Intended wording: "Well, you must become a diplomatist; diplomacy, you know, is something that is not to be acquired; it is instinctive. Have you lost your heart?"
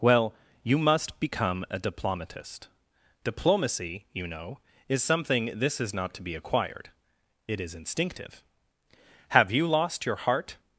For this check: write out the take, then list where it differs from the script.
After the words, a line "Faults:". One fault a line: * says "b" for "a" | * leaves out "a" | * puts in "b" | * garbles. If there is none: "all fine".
"Well, you must become a diplomatist; diplomacy, you know, is something this is not to be acquired; it is instinctive. Have you lost your heart?"
Faults:
* says "this" for "that"